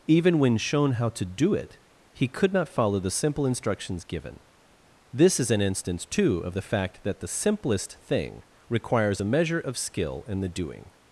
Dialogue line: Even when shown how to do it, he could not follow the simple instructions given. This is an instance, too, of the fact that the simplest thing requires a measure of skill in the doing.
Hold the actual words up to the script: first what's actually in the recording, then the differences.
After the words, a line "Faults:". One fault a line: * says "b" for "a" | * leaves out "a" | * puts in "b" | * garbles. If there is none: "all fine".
Even when shown how to do it, he could not follow the simple instructions given. This is an instance, too, of the fact that the simplest thing requires a measure of skill in the doing.
Faults:
all fine